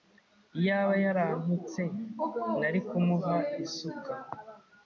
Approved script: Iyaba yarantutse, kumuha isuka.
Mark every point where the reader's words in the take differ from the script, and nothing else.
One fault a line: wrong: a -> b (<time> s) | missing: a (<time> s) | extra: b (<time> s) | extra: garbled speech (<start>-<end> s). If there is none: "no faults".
extra: nari (2.6 s)